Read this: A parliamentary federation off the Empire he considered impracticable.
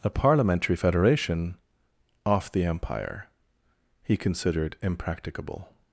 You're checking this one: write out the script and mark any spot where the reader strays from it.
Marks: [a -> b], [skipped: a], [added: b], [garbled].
A parliamentary federation off the Empire he considered impracticable.